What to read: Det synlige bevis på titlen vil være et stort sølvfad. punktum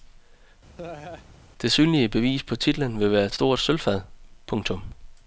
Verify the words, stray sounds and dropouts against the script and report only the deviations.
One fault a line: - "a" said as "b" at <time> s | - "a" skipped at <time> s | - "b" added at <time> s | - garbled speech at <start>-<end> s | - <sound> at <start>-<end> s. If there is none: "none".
- laugh at 0.8-1.3 s